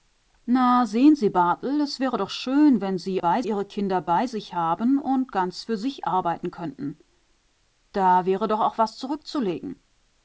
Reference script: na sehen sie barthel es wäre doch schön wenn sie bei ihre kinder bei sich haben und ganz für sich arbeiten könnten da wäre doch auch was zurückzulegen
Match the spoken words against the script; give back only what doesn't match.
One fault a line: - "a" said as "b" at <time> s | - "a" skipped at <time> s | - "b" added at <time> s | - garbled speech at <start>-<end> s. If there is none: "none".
none